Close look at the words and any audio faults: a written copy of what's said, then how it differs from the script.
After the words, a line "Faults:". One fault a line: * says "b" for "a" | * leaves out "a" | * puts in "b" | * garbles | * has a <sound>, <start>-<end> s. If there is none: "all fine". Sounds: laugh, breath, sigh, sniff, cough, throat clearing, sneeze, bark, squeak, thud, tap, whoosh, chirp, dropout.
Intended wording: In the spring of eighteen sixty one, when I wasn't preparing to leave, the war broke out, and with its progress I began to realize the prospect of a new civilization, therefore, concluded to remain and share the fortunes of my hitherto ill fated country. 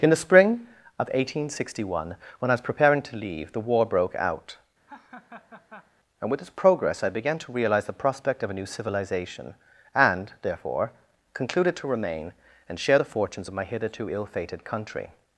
In the spring of eighteen sixty one, when I was preparing to leave, the war broke out, and with its progress I began to realize the prospect of a new civilization, and, therefore, concluded to remain and share the fortunes of my hitherto ill fated country.
Faults:
* says "was" for "wasn't"
* has a laugh, 4.9-5.9 s
* puts in "and"